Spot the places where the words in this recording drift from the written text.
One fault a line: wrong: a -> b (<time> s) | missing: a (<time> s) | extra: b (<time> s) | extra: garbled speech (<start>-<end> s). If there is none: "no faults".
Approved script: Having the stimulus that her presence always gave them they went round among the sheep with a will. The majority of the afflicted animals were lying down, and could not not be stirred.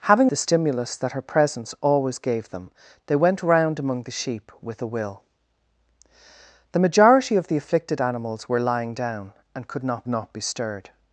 no faults